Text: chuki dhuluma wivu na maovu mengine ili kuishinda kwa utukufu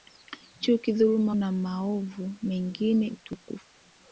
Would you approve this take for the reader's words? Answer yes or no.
no